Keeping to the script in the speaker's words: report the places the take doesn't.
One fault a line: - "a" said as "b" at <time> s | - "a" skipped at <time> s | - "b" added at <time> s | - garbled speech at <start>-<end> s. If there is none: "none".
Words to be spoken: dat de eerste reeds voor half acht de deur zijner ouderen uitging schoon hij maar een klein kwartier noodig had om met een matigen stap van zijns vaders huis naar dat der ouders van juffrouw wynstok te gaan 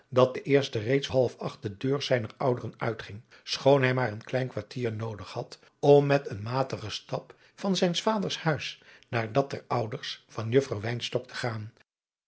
- "voor" skipped at 1.1 s